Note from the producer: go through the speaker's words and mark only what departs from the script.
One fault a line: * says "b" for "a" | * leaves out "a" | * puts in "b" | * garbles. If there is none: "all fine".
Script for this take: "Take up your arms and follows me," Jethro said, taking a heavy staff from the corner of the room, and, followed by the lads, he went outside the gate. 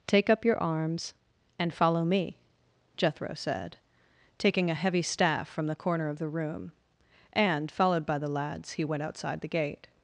* says "follow" for "follows"